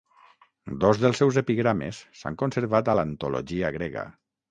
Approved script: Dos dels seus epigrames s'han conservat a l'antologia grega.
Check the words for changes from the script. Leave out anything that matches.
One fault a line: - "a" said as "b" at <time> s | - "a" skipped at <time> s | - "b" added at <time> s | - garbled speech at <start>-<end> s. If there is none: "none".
none